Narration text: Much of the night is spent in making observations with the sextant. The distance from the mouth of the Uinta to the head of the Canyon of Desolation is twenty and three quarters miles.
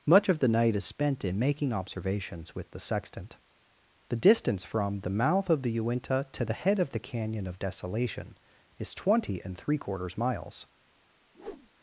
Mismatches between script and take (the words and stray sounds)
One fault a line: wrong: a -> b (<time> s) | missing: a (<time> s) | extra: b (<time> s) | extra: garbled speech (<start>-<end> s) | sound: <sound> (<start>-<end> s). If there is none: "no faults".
sound: whoosh (11.3-11.7 s)